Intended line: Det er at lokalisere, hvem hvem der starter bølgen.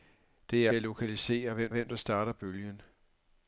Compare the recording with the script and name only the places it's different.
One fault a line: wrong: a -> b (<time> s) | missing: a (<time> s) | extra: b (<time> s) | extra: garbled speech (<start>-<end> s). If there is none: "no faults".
no faults